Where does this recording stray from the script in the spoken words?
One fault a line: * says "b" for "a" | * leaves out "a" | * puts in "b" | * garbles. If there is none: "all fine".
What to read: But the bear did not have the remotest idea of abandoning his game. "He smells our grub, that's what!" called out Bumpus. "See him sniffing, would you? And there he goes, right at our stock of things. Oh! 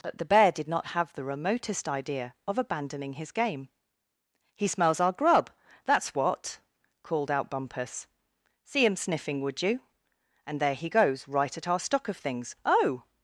all fine